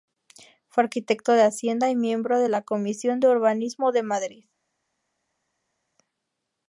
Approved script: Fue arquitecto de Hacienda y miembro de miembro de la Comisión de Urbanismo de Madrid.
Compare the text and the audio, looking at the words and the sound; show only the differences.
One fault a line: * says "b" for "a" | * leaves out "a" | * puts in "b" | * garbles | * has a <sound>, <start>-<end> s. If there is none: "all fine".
* leaves out "miembro de"